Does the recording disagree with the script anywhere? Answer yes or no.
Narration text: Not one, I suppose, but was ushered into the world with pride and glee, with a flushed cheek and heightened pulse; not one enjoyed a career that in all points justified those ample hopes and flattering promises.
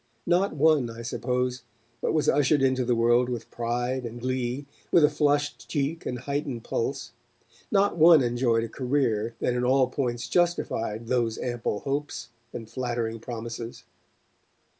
no